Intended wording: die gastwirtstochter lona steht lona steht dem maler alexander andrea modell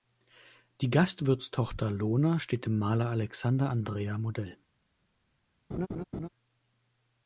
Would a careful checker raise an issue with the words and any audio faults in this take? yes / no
yes